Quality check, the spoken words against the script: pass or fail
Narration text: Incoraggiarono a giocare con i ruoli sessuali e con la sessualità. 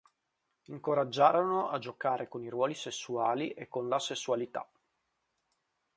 pass